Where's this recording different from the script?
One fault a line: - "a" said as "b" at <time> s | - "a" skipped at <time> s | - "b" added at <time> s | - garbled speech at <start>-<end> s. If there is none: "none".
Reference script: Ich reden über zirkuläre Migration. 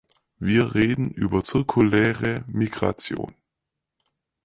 - "Ich" said as "Wir" at 0.4 s